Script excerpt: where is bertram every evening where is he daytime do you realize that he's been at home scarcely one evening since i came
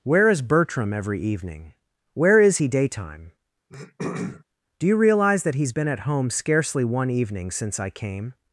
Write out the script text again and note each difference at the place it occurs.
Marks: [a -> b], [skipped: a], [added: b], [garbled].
where is bertram every evening where is he daytime do you realize that he's been at home scarcely one evening since i came